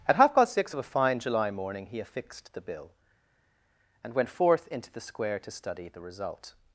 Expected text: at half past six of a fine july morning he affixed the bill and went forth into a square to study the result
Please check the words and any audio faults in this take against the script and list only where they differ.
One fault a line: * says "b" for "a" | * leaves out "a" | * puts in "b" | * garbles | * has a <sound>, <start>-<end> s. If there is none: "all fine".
* says "the" for "a"